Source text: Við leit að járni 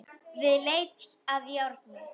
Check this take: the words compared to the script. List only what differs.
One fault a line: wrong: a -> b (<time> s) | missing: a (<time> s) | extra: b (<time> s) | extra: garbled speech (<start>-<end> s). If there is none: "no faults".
no faults